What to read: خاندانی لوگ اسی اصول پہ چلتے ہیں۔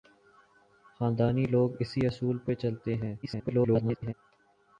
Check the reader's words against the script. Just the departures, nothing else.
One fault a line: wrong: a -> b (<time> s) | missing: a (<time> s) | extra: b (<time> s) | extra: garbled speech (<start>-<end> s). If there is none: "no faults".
extra: garbled speech (3.2-4.1 s)